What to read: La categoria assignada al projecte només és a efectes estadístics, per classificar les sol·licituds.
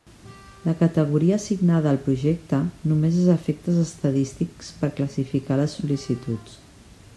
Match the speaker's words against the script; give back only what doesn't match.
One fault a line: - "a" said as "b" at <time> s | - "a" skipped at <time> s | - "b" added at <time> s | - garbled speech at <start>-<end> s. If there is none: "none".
none